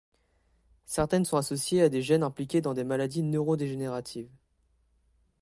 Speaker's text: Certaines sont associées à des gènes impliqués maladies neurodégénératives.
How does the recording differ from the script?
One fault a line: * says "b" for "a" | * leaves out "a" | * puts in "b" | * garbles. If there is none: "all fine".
* puts in "dans des"